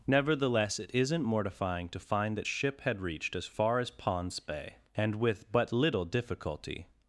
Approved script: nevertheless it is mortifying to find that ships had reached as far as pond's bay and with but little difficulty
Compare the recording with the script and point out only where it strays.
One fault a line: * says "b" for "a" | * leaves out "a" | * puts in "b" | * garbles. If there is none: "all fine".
* says "isn't" for "is"
* says "ship" for "ships"